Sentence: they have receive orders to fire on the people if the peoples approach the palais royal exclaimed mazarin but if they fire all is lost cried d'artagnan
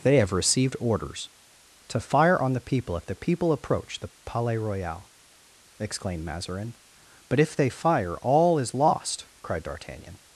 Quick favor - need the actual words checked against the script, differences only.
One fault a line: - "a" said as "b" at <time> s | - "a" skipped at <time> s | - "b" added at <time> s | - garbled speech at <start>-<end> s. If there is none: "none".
- "receive" said as "received" at 0.3 s
- "peoples" said as "people" at 3.1 s